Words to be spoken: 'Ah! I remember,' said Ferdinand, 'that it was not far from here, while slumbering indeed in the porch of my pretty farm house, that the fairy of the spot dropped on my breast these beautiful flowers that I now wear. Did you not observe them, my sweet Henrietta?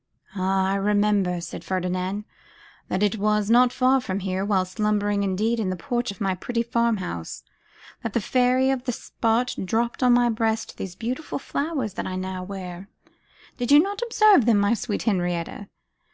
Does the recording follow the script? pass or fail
pass